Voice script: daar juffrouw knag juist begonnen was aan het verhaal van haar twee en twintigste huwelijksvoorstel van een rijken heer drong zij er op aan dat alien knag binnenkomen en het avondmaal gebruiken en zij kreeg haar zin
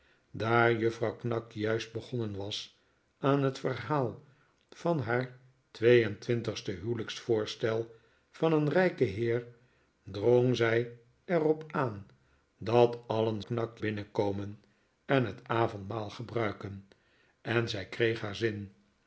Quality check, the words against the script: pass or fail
pass